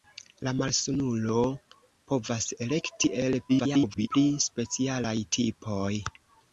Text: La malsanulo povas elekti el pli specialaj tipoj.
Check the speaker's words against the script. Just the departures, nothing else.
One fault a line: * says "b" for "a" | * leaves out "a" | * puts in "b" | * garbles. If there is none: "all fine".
* garbles